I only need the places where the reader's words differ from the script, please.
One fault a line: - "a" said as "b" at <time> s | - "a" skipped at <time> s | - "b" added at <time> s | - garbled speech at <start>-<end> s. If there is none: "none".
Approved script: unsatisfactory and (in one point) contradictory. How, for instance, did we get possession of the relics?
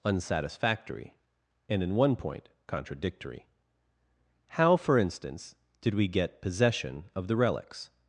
none